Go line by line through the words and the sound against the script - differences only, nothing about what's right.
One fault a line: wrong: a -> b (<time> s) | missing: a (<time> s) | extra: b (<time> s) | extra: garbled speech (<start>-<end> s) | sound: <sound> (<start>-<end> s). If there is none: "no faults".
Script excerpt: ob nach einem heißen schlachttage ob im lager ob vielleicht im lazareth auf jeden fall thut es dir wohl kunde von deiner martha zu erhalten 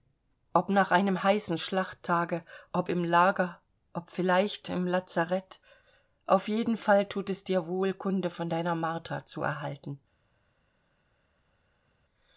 no faults